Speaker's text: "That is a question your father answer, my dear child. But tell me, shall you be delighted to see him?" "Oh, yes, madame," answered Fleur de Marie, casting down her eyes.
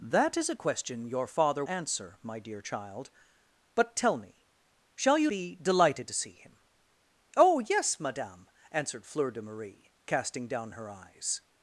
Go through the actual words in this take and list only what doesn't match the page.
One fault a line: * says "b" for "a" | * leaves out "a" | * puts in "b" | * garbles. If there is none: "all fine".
all fine